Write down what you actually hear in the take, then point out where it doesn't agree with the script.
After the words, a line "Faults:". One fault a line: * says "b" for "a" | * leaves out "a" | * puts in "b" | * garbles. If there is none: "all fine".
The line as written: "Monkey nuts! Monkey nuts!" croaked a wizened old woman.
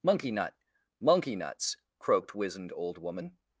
"Monkey nut! Monkey nuts!" croaked wizened old woman.
Faults:
* says "nut" for "nuts"
* leaves out "a"